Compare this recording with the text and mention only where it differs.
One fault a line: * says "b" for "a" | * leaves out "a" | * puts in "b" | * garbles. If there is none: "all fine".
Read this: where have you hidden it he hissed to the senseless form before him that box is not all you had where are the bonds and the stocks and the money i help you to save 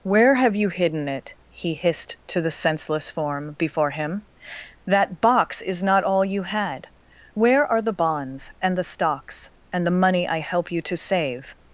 all fine